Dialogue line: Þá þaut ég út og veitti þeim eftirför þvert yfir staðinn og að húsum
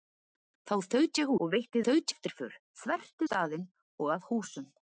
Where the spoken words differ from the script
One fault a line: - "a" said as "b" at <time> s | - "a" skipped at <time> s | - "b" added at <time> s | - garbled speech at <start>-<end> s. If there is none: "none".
- "út" skipped at 1.3 s
- "þeim" said as "þaut" at 1.9 s
- "yfir" skipped at 3.3 s